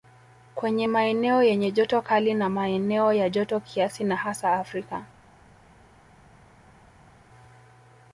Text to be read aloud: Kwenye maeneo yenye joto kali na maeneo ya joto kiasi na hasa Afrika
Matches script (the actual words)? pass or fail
pass